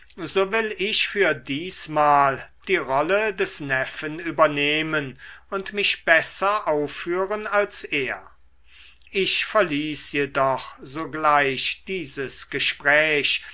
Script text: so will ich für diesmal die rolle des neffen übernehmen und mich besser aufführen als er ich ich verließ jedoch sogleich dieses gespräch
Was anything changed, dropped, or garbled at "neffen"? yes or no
no